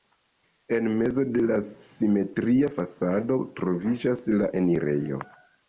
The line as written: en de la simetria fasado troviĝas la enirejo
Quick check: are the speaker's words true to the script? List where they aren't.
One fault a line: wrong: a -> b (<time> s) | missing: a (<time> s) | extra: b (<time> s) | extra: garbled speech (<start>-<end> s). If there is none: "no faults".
extra: mezo (1.0 s)